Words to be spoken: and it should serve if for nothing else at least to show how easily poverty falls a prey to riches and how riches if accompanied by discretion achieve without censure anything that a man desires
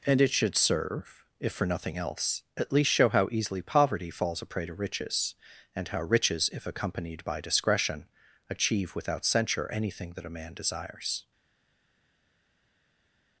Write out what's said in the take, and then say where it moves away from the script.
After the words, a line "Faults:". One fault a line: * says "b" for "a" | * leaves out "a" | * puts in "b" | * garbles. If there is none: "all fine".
and it should serve if for nothing else at least show how easily poverty falls a prey to riches and how riches if accompanied by discretion achieve without censure anything that a man desires
Faults:
* leaves out "to"